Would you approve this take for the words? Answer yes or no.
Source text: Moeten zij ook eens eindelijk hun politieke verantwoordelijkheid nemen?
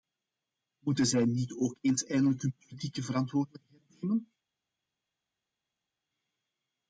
no